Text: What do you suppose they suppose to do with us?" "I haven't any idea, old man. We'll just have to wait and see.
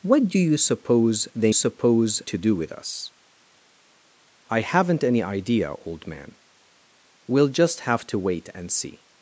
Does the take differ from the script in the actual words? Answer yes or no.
no